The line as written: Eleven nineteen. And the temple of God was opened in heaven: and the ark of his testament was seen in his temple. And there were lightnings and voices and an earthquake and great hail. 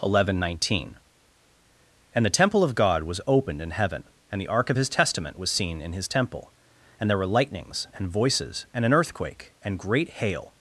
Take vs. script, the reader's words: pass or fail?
pass